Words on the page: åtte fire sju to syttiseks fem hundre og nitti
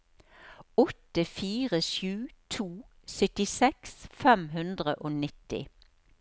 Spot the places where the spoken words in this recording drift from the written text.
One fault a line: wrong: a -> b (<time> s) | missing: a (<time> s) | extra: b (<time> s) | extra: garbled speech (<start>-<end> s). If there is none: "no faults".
no faults